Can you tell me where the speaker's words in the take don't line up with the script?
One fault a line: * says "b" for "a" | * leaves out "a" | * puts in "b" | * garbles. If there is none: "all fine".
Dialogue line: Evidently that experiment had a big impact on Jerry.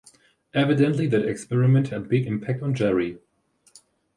* leaves out "had"